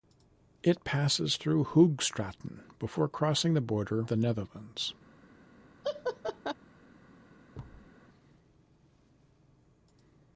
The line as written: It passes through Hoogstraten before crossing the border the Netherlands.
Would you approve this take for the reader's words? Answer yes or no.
yes